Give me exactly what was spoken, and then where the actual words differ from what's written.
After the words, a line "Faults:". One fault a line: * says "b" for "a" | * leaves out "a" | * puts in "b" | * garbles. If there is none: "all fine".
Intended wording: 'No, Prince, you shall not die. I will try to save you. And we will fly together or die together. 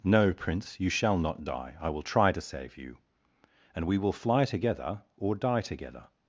'No, Prince, you shall not die. I will try to save you. And we will fly together or die together.
Faults:
all fine